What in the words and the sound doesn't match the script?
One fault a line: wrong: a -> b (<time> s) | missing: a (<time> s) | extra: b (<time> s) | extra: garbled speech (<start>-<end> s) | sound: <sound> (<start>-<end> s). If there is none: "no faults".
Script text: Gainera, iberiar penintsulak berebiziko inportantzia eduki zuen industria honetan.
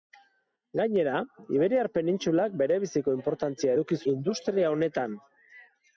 missing: zuen (4.0 s)